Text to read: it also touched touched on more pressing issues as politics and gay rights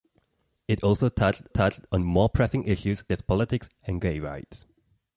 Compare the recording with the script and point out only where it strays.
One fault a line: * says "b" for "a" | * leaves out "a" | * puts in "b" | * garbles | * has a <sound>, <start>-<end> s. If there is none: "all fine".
all fine